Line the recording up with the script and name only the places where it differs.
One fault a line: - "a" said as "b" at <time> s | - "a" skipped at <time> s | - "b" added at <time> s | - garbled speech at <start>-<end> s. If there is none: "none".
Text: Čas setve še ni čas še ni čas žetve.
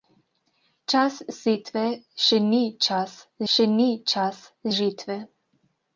none